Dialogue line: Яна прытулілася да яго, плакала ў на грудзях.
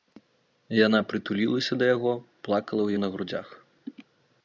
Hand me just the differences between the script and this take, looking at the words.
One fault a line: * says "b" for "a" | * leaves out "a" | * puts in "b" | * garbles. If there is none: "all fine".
all fine